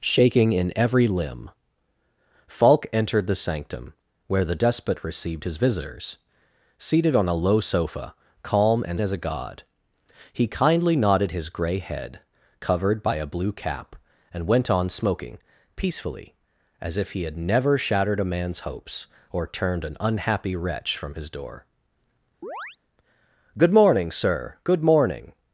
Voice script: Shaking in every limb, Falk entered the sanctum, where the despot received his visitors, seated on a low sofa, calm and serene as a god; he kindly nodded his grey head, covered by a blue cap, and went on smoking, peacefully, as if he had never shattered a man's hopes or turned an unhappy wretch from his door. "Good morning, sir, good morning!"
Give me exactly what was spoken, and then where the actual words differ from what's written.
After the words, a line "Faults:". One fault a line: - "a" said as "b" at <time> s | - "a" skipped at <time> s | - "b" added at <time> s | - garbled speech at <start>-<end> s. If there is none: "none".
Shaking in every limb, Falk entered the sanctum, where the despot received his visitors, seated on a low sofa, calm and as a god; he kindly nodded his grey head, covered by a blue cap, and went on smoking, peacefully, as if he had never shattered a man's hopes or turned an unhappy wretch from his door. "Good morning, sir, good morning!"
Faults:
- "serene" skipped at 9.0 s